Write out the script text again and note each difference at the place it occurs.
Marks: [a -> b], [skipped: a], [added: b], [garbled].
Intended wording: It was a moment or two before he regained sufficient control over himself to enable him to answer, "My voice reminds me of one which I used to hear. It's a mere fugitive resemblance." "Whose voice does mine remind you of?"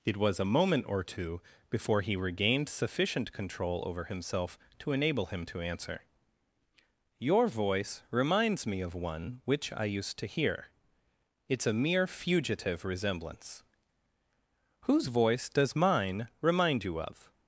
It was a moment or two before he regained sufficient control over himself to enable him to answer, ["My -> Your] voice reminds me of one which I used to hear. It's a mere fugitive resemblance." "Whose voice does mine remind you of?"